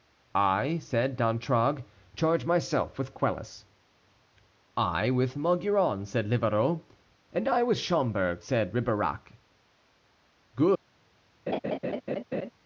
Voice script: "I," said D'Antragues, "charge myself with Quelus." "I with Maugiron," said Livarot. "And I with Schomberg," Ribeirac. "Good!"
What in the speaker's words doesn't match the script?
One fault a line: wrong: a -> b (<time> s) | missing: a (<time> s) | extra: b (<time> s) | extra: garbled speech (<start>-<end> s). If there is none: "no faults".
extra: said (8.4 s)